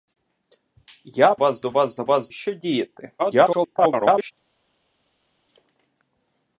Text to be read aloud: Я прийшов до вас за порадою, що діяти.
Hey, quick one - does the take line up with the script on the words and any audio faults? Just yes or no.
no